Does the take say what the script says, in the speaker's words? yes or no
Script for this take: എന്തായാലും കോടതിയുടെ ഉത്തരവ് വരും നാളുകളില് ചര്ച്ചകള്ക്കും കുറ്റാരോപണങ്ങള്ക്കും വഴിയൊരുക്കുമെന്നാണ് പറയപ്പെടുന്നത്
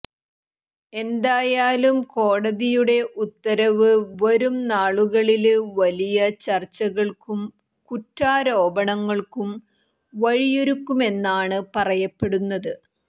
no